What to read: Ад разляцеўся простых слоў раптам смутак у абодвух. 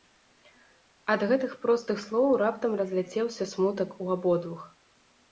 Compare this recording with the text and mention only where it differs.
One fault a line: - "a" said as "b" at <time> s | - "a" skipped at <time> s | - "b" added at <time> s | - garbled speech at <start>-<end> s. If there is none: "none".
- "разляцеўся" said as "гэтых" at 1.3 s
- "разляцеўся" added at 2.8 s